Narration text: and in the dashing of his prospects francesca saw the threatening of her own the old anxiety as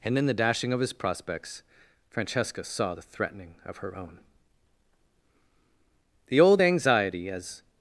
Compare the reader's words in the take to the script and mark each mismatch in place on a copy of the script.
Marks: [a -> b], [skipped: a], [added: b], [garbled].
and in the dashing of his prospects francesca saw the threatening of her own the old anxiety as